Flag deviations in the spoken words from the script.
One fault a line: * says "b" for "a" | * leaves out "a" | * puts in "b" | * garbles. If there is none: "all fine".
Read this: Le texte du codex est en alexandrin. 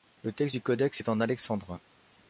all fine